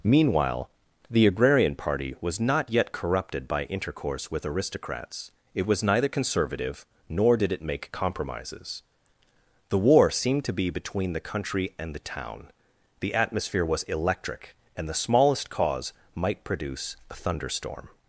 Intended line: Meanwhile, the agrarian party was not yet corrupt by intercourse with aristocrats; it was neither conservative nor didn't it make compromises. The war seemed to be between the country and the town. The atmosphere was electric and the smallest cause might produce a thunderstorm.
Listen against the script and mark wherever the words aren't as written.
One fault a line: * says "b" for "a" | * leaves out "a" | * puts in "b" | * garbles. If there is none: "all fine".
* says "corrupted" for "corrupt"
* says "did" for "didn't"